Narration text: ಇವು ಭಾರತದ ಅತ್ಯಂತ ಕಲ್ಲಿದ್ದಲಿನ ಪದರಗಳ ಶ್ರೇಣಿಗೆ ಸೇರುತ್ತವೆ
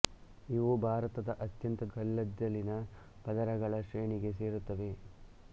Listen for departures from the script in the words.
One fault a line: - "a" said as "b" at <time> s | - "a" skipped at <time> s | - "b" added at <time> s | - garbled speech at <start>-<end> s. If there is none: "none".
none